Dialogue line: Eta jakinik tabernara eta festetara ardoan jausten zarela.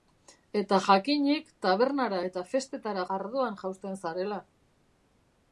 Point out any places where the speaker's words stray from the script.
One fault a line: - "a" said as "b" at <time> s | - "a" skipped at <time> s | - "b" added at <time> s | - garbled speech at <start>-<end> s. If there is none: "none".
none